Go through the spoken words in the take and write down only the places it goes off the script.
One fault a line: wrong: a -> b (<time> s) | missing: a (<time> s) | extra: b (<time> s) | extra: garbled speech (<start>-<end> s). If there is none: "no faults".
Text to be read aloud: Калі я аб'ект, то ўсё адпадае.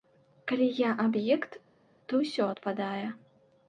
no faults